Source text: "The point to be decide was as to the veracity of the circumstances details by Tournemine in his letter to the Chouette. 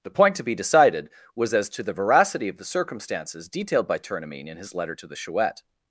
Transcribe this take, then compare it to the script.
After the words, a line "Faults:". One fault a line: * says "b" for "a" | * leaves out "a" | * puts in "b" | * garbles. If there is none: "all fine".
"The point to be decided was as to the veracity of the circumstances detailed by Tournemine in his letter to the Chouette.
Faults:
* says "decided" for "decide"
* says "detailed" for "details"